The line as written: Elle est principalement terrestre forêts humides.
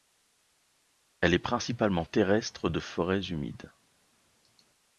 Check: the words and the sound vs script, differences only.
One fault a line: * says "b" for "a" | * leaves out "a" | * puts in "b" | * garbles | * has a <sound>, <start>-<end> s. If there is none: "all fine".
* puts in "de"